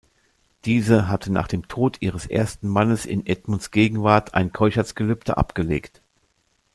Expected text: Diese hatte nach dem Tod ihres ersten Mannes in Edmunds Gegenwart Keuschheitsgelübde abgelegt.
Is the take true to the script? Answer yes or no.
no